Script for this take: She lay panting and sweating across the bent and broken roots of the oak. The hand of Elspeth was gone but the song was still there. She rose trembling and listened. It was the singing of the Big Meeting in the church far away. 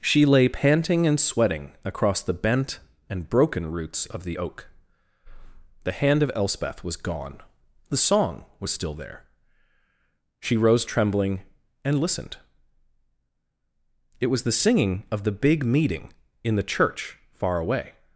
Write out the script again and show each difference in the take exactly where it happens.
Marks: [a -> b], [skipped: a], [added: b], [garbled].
She lay panting and sweating across the bent and broken roots of the oak. The hand of Elspeth was gone [skipped: but] the song was still there. She rose trembling and listened. It was the singing of the Big Meeting in the church far away.